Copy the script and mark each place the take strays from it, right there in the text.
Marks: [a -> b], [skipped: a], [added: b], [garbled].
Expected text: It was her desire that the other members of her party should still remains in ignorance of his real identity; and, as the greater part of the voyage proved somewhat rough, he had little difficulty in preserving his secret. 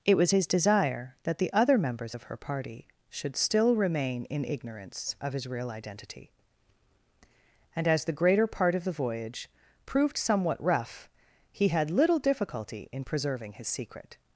It was [her -> his] desire that the other members of her party should still [remains -> remain] in ignorance of his real identity; and, as the greater part of the voyage proved somewhat rough, he had little difficulty in preserving his secret.